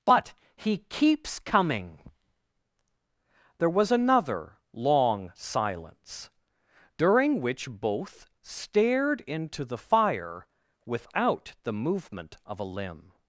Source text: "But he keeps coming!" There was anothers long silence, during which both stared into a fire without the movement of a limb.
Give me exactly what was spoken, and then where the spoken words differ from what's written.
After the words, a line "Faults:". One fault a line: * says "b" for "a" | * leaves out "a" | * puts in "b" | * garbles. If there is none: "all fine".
"But he keeps coming!" There was another long silence, during which both stared into the fire without the movement of a limb.
Faults:
* says "another" for "anothers"
* says "the" for "a"